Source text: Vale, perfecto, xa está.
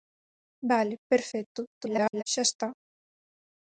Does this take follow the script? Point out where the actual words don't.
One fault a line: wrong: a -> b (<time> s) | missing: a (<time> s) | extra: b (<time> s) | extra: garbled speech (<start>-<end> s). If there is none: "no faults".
extra: garbled speech (1.7-2.2 s)